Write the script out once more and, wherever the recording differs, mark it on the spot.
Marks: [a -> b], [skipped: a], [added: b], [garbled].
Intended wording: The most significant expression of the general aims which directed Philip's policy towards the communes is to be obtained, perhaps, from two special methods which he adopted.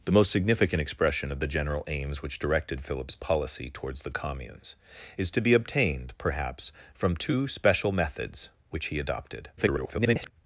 The most significant expression of the general aims which directed Philip's policy towards the communes is to be obtained, perhaps, from two special methods which he adopted. [garbled]